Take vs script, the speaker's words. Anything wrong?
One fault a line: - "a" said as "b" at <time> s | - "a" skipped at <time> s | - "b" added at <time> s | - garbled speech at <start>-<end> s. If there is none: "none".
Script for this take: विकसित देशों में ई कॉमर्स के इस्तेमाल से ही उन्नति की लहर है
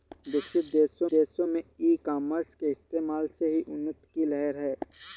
- "देशों" added at 1.1 s